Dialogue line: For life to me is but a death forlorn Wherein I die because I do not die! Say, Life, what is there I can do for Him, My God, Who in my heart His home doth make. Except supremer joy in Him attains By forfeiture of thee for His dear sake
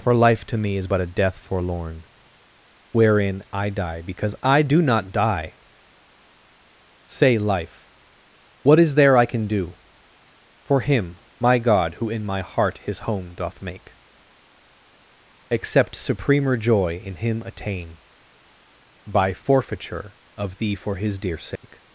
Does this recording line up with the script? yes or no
no